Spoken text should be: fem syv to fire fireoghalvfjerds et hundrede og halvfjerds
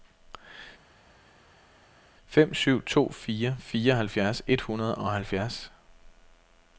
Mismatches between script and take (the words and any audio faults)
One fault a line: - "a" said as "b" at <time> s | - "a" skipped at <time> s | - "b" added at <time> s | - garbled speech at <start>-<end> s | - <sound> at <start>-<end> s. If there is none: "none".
none